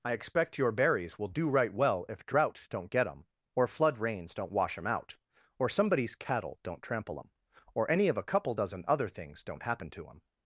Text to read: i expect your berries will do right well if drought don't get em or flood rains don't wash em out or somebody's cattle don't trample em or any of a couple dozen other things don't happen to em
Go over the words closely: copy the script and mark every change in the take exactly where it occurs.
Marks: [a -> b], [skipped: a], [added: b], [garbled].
i expect your berries will do right well if drought don't get em or flood rains don't wash em out or somebody's cattle don't trample em or any of a couple dozen other things don't happen to em